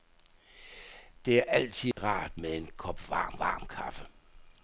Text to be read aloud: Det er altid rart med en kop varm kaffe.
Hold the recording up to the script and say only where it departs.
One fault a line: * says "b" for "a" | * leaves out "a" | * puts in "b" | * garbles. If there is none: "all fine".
* puts in "varm"